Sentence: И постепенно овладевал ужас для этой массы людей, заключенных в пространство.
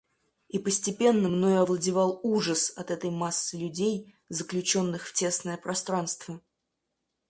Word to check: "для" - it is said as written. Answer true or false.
false